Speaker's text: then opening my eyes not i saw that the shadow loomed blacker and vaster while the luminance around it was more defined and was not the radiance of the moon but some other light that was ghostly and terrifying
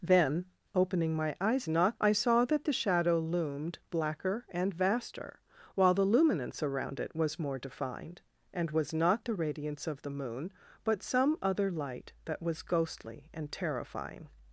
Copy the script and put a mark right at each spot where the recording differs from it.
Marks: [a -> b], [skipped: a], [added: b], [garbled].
then opening my eyes not i saw that the shadow loomed blacker and vaster while the luminance around it was more defined and was not the radiance of the moon but some other light that was ghostly and terrifying